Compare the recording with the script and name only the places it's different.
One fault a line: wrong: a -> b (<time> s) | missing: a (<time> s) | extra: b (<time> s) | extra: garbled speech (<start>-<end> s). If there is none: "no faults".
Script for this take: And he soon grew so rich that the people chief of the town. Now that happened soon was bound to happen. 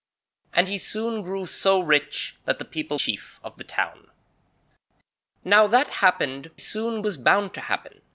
no faults